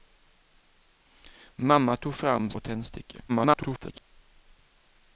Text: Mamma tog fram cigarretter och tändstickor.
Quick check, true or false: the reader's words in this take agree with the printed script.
false